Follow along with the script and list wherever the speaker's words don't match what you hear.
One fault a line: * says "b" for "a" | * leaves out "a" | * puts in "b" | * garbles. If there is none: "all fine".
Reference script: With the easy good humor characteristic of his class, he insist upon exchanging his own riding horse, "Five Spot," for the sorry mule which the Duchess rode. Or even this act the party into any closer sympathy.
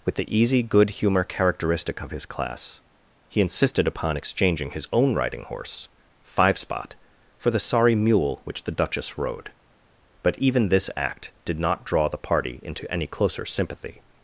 * says "insisted" for "insist"
* says "But" for "Or"
* puts in "did not draw"